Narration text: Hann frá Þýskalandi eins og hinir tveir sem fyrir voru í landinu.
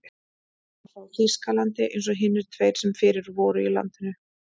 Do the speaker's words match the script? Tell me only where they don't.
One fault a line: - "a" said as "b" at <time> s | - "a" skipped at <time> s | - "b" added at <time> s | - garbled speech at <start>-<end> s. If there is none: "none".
none